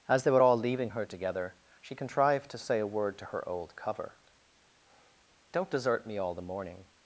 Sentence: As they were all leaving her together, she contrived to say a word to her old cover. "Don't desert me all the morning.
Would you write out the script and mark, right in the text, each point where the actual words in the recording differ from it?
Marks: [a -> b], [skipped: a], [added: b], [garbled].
As they were all leaving her together, she contrived to say a word to her old cover. "Don't desert me all the morning.